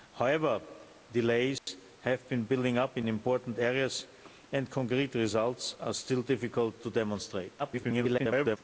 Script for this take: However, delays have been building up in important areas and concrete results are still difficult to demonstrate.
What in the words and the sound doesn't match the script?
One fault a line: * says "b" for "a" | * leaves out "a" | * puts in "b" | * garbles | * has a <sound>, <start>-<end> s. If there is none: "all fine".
* has a dropout, 1.6-1.7 s
* garbles